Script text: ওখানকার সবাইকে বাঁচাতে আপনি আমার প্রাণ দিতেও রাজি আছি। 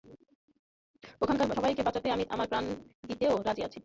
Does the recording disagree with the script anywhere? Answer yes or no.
yes